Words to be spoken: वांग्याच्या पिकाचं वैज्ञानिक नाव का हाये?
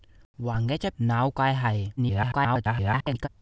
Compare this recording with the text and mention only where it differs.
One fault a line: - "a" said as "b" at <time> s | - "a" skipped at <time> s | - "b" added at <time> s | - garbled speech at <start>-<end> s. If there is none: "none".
- "पिकाचं वैज्ञानिक" skipped at 0.9 s
- garbled speech at 2.0-3.3 s